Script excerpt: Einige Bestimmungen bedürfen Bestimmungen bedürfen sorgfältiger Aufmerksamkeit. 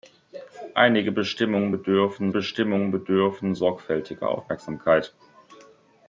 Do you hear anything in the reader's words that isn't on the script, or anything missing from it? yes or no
no